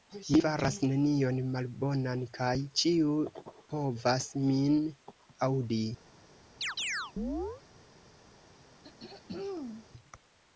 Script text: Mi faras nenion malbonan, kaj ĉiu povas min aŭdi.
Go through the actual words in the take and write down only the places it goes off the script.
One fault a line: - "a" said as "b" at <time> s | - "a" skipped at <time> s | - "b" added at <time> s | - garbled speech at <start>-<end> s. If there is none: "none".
none